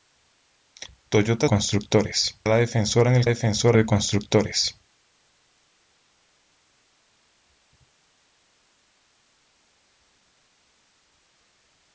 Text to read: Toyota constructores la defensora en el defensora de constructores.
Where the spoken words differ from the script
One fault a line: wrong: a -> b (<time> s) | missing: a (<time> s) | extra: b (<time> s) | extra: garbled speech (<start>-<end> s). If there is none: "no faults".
no faults